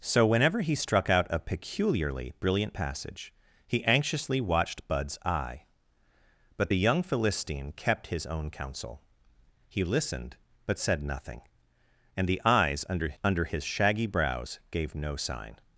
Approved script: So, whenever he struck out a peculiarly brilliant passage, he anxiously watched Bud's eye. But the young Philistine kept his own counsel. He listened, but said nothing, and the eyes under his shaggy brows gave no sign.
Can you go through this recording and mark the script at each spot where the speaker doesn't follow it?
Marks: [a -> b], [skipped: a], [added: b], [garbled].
So, whenever he struck out a peculiarly brilliant passage, he anxiously watched Bud's eye. But the young Philistine kept his own counsel. He listened, but said nothing, and the eyes under [added: under] his shaggy brows gave no sign.